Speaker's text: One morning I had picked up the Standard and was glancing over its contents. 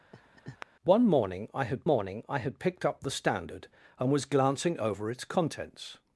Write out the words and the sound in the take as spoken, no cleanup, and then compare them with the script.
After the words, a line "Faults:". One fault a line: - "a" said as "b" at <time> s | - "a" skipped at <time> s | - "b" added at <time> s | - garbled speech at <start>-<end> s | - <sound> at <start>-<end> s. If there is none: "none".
One morning I had morning I had picked up the Standard and was glancing over its contents.
Faults:
- laugh at 0.1-0.7 s
- "morning I had" added at 1.8 s